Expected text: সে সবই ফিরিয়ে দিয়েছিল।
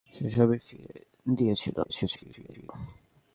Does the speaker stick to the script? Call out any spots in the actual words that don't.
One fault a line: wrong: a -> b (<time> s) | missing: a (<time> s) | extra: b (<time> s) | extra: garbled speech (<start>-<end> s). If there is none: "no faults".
extra: garbled speech (1.8-2.7 s)